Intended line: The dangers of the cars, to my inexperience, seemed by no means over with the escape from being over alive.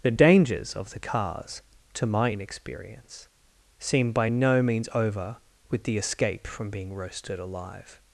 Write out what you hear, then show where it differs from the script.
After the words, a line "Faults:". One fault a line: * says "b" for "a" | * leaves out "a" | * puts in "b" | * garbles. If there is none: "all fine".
The dangers of the cars, to my inexperience, seemed by no means over with the escape from being roasted alive.
Faults:
* says "roasted" for "over"